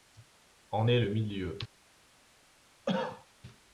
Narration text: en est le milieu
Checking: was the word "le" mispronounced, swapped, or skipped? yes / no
no